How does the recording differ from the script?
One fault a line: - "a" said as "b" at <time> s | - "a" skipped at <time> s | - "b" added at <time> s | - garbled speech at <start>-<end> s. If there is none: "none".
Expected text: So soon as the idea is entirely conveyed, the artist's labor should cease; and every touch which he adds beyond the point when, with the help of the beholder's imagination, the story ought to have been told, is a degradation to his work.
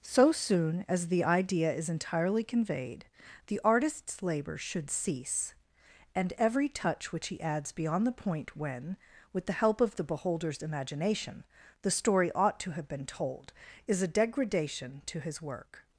none